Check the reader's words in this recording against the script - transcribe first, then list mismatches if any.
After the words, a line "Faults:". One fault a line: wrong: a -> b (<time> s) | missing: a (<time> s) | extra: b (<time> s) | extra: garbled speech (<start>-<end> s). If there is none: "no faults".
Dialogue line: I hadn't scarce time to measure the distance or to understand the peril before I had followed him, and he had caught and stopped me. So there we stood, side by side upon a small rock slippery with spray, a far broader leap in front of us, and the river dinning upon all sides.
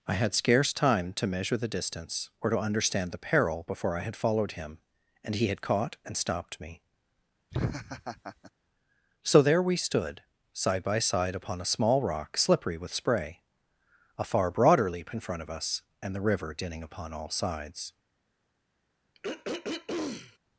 I had scarce time to measure the distance or to understand the peril before I had followed him, and he had caught and stopped me. So there we stood, side by side upon a small rock slippery with spray, a far broader leap in front of us, and the river dinning upon all sides.
Faults:
wrong: hadn't -> had (0.1 s)